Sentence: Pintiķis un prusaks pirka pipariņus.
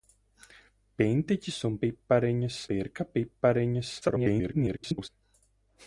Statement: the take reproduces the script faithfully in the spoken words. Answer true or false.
false